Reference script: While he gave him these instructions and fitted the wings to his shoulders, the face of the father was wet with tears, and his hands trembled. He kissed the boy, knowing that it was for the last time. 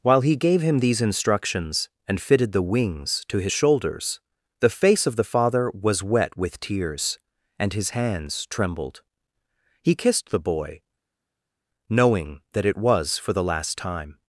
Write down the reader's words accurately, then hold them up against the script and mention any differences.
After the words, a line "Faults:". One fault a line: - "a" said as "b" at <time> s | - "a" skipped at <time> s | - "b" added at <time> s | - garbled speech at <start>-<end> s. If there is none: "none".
While he gave him these instructions and fitted the wings to his shoulders, the face of the father was wet with tears, and his hands trembled. He kissed the boy, knowing that it was for the last time.
Faults:
none